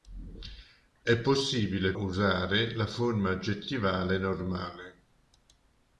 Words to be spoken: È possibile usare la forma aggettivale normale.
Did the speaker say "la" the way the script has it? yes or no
yes